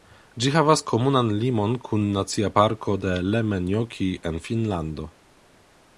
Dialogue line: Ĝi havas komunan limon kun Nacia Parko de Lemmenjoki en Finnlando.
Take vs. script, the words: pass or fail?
pass